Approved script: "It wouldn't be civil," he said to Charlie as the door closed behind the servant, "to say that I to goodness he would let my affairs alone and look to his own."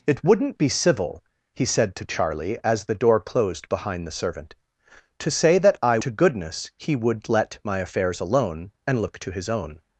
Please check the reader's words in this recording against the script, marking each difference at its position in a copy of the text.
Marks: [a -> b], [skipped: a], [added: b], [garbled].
"It wouldn't be civil," he said to Charlie as the door closed behind the servant, "to say that I to goodness he would let my affairs alone and look to his own."